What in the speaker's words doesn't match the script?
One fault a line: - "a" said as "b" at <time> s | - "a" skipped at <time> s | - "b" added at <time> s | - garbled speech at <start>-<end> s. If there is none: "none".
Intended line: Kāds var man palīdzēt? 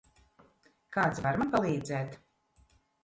none